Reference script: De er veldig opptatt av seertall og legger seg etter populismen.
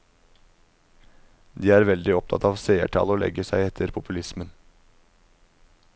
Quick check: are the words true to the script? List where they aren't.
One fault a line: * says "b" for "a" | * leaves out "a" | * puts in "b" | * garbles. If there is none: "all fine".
all fine